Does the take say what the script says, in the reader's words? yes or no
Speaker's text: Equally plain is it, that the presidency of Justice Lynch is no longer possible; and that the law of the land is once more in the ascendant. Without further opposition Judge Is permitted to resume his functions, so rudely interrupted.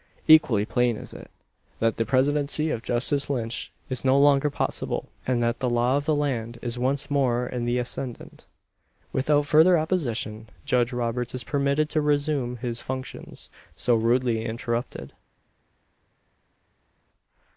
no